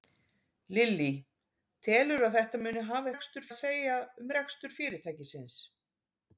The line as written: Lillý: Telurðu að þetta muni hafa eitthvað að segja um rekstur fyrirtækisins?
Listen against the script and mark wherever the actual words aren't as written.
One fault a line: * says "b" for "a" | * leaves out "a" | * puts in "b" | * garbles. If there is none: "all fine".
* says "rekstur" for "eitthvað"